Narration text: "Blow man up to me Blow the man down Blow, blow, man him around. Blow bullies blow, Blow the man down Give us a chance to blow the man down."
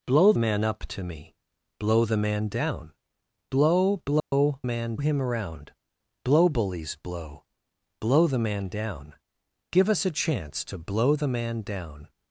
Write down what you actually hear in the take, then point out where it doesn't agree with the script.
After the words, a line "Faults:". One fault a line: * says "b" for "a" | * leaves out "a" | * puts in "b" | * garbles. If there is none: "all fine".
"Blow man up to me Blow the man down Blow, blow, man him around. Blow bullies blow, Blow the man down Give us a chance to blow the man down."
Faults:
all fine